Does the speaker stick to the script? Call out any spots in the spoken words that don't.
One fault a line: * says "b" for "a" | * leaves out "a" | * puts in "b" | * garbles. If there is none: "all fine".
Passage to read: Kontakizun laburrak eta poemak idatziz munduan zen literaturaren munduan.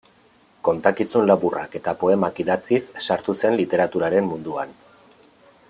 * says "sartu" for "munduan"